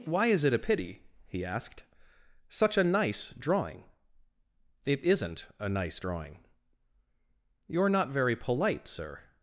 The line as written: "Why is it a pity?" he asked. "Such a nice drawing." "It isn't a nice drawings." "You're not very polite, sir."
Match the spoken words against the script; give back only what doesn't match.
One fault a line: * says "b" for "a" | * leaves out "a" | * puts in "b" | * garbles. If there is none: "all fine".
* says "drawing" for "drawings"